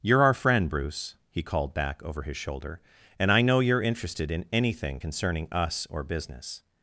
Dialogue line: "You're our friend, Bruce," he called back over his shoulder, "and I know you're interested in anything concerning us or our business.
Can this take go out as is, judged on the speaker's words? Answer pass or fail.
fail